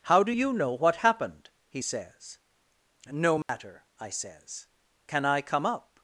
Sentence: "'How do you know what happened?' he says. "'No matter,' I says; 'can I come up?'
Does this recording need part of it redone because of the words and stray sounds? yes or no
yes